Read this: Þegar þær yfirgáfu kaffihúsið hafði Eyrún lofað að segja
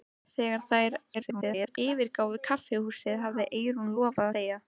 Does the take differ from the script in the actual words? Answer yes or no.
yes